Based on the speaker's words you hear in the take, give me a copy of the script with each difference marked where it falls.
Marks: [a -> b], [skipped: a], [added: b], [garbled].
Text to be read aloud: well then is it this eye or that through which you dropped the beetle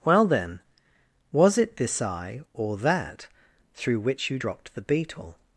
well then [is -> was] it this eye or that through which you dropped the beetle